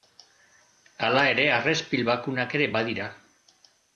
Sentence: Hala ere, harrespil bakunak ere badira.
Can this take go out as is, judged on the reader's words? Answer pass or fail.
pass